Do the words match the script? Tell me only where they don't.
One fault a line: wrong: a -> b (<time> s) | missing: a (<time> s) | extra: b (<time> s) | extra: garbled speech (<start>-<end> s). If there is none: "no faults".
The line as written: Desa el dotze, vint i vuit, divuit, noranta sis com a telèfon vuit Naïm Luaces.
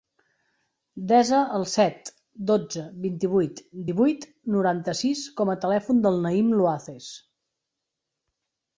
extra: set (1.7 s)
wrong: vuit -> del (6.1 s)